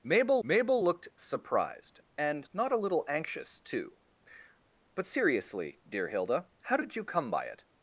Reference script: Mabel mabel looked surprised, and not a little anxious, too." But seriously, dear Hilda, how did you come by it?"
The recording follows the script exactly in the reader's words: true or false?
true